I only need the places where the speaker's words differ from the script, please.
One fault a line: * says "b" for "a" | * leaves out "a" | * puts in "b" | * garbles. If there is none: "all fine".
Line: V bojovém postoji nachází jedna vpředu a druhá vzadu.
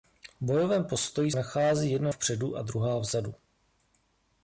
all fine